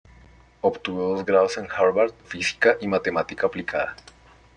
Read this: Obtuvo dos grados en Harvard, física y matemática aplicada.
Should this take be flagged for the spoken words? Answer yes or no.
no